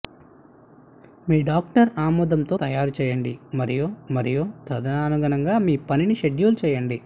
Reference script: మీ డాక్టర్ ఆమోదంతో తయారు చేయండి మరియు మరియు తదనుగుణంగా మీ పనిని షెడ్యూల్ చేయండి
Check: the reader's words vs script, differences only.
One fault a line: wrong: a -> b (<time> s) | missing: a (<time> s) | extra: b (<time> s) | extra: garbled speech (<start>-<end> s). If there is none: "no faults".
no faults